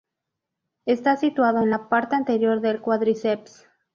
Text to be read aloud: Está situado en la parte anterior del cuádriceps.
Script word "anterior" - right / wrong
right